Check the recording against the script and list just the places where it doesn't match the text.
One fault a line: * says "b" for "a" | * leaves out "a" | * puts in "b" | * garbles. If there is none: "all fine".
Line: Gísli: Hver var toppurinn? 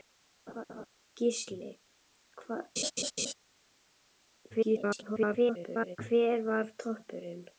* garbles